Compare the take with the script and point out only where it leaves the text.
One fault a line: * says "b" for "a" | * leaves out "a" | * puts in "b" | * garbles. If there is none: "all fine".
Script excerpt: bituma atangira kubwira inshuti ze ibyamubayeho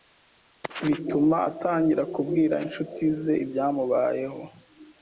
all fine